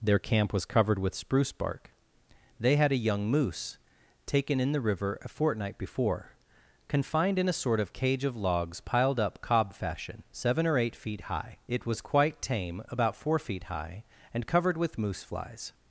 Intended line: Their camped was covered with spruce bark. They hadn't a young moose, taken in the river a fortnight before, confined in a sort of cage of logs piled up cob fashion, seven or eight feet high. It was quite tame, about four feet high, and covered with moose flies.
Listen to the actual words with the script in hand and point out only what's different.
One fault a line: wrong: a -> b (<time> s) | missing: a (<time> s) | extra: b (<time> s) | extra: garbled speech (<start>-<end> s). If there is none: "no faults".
wrong: camped -> camp (0.2 s)
wrong: hadn't -> had (2.8 s)